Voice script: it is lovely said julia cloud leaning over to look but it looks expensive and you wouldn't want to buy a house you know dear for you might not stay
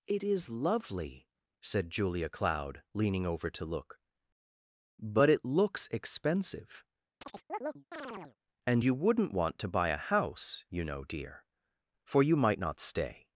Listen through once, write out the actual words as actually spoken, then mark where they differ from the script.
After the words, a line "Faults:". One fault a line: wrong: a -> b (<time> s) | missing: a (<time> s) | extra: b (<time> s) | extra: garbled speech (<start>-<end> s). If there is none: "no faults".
it is lovely said julia cloud leaning over to look but it looks expensive and you wouldn't want to buy a house you know dear for you might not stay
Faults:
no faults